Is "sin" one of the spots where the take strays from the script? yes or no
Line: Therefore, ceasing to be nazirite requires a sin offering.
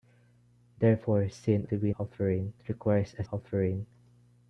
yes